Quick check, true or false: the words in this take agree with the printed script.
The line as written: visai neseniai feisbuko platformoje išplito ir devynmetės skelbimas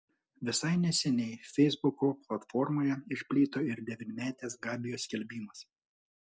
false